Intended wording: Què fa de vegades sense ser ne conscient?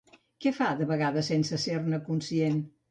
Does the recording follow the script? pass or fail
pass